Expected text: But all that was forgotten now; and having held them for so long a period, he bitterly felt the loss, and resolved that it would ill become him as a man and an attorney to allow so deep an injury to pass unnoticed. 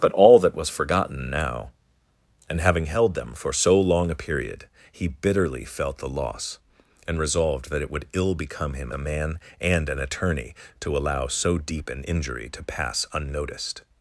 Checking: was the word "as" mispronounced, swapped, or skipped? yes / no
yes